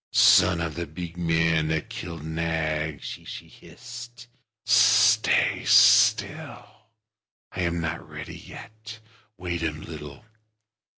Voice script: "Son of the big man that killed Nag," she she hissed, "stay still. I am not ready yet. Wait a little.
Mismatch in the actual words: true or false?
false